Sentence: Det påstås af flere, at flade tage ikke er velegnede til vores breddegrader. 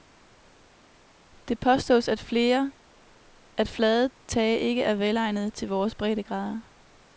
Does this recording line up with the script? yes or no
yes